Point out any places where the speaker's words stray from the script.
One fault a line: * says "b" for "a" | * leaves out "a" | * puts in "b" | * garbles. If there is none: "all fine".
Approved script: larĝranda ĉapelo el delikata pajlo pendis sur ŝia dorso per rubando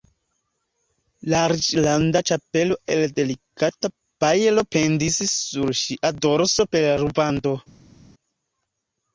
all fine